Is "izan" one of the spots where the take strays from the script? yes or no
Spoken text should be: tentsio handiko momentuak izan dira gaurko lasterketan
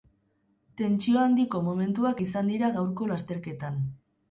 no